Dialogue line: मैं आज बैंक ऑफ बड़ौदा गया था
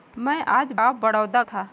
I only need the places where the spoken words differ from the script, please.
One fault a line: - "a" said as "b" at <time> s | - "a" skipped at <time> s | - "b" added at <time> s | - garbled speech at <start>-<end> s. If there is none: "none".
- "बैंक" skipped at 0.7 s
- "गया" skipped at 1.4 s